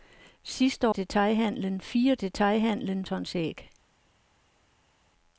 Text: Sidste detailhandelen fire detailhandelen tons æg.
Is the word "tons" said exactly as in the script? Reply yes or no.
yes